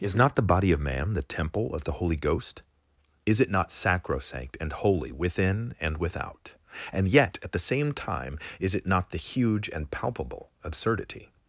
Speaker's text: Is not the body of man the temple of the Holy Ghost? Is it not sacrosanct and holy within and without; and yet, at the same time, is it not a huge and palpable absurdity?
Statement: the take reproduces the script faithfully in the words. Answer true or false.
false